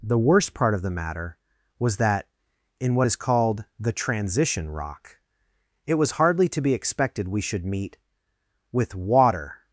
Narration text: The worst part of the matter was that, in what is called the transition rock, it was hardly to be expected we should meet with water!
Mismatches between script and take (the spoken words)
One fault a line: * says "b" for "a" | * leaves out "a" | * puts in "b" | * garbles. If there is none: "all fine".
all fine